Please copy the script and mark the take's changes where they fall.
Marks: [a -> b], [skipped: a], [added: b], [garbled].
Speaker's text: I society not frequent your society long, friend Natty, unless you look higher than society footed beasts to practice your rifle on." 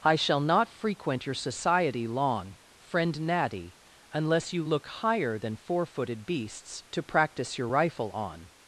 I [society -> shall] not frequent your society long, friend Natty, unless you look higher than [society -> four] footed beasts to practice your rifle on."